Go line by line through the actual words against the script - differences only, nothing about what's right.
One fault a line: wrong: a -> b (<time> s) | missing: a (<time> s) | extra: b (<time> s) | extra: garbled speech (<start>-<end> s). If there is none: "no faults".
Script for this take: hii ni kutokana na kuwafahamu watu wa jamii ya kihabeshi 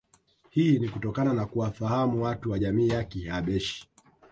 no faults